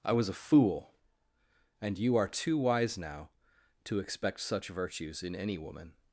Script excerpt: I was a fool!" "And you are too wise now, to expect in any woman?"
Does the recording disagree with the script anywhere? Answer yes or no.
yes